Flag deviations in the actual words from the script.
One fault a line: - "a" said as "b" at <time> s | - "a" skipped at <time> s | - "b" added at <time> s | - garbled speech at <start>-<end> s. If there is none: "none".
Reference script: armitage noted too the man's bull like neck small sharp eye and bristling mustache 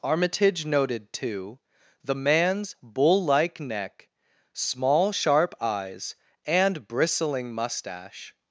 - "eye" said as "eyes" at 5.6 s